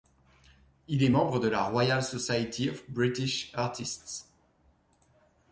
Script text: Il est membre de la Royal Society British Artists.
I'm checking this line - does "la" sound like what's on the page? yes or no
yes